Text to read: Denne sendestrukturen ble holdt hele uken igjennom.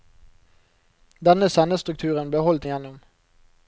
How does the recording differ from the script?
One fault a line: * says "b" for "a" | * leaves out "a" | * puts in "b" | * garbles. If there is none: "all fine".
* leaves out "hele uken"